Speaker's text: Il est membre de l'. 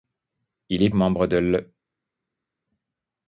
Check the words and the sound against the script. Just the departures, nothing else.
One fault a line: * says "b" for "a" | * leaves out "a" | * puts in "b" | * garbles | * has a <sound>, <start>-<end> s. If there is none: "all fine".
all fine